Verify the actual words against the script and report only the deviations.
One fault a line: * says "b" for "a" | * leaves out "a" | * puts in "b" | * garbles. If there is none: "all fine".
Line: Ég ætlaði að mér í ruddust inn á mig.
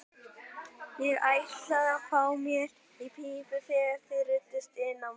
* puts in "fá"
* puts in "pípu þegar þið"